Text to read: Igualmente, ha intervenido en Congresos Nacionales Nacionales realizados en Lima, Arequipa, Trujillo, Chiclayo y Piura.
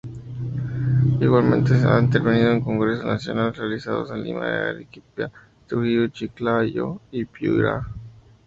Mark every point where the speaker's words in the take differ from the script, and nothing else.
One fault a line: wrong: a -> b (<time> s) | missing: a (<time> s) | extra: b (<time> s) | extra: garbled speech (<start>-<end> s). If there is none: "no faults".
missing: Nacionales (3.5 s)